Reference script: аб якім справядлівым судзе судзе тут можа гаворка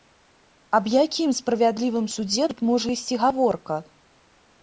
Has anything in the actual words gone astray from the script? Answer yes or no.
yes